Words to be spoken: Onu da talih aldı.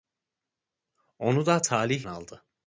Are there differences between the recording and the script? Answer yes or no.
no